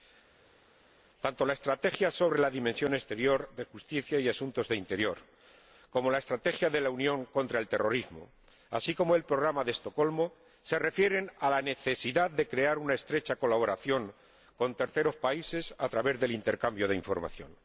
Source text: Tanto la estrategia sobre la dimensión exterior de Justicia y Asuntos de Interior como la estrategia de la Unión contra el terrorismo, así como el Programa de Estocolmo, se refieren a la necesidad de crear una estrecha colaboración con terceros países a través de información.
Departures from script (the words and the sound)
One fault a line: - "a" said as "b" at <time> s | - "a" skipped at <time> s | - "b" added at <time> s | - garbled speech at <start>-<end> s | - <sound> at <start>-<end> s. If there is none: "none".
- "del intercambio" added at 16.2 s